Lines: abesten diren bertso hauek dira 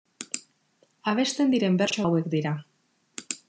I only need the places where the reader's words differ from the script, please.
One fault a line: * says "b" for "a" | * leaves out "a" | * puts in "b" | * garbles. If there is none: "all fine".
all fine